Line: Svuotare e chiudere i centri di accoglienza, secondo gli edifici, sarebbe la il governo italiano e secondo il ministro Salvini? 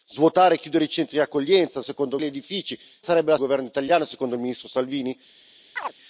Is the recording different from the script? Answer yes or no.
no